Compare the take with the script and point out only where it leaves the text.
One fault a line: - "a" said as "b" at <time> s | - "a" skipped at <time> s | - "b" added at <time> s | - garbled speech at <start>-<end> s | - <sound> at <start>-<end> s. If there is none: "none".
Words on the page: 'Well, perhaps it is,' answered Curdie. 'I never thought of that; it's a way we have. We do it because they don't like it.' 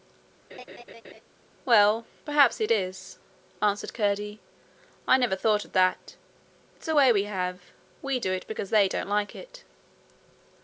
- laugh at 0.5-1.2 s